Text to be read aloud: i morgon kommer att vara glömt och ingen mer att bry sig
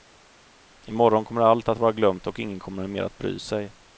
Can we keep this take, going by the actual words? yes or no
no